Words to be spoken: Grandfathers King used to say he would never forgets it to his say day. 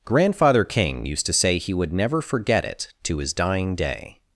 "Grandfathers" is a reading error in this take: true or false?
true